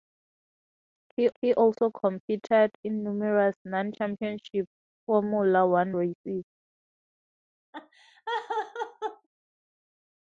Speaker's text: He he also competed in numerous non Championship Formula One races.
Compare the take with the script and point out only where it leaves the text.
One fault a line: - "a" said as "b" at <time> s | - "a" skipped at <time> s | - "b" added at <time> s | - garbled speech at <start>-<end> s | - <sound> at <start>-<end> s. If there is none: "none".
- laugh at 7.7-9.3 s